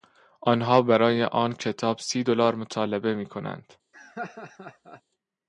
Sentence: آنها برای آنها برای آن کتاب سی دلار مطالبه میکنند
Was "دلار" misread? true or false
false